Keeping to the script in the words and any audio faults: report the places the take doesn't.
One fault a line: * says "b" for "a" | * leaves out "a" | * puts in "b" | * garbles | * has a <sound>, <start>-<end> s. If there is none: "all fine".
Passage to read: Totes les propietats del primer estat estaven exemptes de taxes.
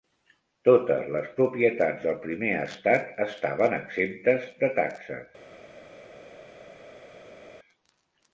all fine